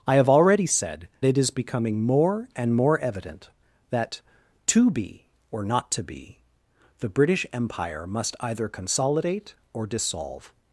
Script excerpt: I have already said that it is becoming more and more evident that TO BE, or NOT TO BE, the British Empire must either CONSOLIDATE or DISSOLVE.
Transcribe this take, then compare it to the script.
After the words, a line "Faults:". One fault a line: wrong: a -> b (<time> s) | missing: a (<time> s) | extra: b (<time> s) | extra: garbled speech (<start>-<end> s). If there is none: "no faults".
I have already said it is becoming more and more evident that TO BE, or NOT TO BE, the British Empire must either CONSOLIDATE or DISSOLVE.
Faults:
missing: that (1.1 s)